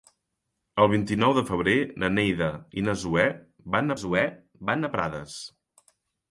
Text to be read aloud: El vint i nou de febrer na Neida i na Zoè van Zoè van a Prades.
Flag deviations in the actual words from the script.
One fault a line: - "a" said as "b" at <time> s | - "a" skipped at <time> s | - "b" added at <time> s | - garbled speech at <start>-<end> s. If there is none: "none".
none